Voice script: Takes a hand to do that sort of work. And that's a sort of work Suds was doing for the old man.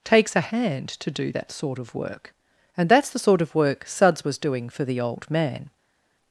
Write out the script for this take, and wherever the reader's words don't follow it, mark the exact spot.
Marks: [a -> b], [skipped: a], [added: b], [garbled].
Takes a hand to do that sort of work. And that's [a -> the] sort of work Suds was doing for the old man.